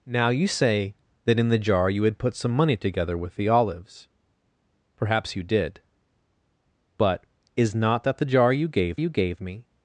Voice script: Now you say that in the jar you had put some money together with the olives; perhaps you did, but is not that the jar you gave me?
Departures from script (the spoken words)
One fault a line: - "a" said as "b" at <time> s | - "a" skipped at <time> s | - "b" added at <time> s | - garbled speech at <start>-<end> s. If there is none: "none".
- "you gave" added at 8.9 s